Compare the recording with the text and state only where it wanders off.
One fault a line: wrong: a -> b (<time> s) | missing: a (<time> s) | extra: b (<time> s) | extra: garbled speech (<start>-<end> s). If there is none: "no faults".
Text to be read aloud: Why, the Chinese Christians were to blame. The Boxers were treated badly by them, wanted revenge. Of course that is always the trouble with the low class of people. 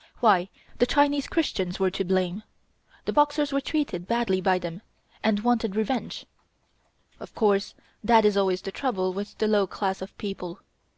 extra: and (5.2 s)